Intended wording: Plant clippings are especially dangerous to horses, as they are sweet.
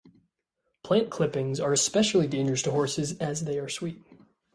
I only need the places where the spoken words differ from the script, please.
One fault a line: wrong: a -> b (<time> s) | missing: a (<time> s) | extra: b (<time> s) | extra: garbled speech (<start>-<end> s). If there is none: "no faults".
no faults